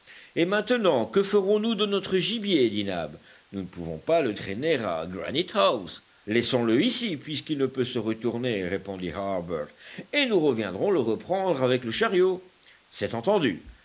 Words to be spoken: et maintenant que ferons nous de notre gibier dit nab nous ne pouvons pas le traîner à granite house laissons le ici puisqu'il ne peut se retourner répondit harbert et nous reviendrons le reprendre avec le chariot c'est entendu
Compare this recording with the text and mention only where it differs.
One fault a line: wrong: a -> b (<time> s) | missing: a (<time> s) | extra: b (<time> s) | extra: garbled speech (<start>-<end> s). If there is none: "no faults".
no faults